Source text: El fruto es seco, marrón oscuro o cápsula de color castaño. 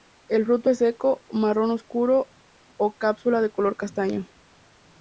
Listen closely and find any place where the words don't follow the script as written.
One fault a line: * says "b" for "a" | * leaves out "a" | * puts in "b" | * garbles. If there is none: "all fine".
all fine